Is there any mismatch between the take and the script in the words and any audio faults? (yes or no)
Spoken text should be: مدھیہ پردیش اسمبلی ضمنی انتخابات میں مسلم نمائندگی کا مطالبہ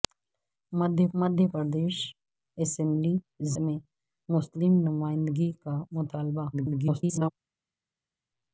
yes